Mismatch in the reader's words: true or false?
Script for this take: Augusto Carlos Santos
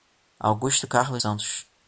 false